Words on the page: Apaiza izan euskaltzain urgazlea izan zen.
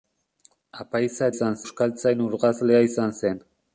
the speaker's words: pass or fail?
pass